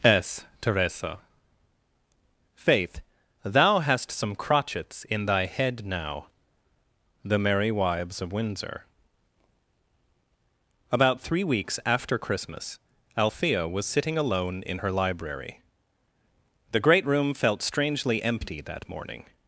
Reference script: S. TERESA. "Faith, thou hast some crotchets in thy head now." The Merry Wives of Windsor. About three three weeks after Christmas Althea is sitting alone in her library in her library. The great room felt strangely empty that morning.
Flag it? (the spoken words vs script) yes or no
yes